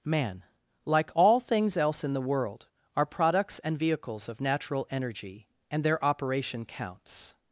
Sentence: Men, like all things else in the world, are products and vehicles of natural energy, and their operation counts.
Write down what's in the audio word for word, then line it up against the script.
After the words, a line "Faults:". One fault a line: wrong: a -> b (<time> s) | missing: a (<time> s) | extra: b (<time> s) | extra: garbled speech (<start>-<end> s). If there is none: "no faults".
Man, like all things else in the world, are products and vehicles of natural energy, and their operation counts.
Faults:
wrong: Men -> Man (0.0 s)